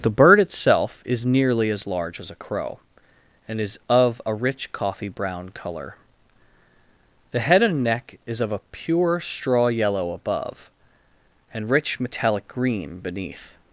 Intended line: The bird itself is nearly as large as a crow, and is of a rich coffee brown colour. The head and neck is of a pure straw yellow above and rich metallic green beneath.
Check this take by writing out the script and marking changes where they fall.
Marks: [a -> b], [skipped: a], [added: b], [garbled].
The bird itself is nearly as large as a crow, and is of a rich coffee brown colour. The head and neck is of a pure straw yellow above and rich metallic green beneath.